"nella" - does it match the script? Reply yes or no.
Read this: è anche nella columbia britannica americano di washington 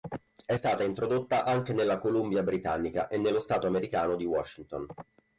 yes